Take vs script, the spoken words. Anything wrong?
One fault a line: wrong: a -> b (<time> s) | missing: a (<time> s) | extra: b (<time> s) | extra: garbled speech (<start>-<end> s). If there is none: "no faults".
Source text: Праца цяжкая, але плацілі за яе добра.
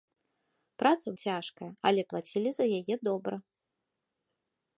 no faults